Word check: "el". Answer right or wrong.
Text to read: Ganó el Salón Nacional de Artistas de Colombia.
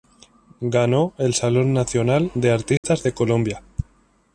right